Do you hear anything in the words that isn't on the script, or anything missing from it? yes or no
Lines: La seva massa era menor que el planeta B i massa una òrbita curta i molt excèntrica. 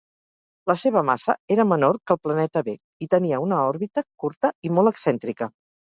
yes